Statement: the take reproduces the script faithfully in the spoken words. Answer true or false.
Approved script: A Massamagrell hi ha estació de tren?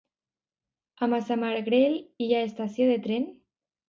true